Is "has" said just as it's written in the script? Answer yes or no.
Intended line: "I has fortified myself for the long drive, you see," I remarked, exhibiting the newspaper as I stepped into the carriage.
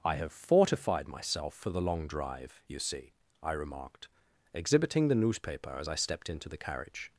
no